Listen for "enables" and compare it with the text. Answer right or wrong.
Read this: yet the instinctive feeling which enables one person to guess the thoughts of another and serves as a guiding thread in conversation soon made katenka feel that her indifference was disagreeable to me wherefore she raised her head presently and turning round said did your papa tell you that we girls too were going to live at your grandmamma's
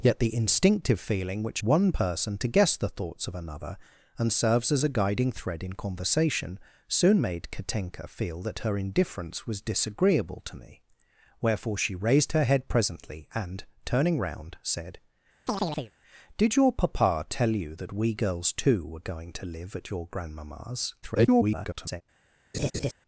wrong